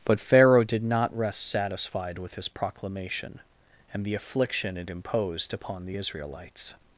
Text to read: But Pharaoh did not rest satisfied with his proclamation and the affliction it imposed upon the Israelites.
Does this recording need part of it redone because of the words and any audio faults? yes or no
no